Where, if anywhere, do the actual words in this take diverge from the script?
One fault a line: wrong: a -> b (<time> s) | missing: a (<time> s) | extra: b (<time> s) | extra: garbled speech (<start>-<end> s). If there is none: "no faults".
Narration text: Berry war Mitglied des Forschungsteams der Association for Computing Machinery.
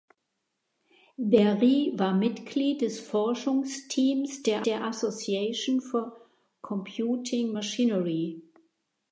extra: der (4.6 s)